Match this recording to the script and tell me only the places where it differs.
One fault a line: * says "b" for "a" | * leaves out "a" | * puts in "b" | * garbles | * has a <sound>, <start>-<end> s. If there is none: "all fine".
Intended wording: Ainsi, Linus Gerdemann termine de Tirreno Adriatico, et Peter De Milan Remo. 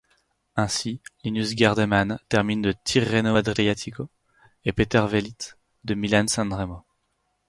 * puts in "Velits"
* puts in "San"